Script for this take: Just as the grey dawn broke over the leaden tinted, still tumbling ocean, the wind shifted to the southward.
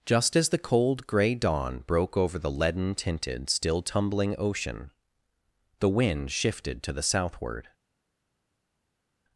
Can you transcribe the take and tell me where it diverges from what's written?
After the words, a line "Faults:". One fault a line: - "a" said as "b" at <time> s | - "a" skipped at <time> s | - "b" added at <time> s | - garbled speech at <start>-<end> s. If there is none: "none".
Just as the cold grey dawn broke over the leaden tinted, still tumbling ocean, the wind shifted to the southward.
Faults:
- "cold" added at 0.6 s